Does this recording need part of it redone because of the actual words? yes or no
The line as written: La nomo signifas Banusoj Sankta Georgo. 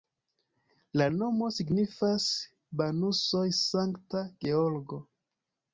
no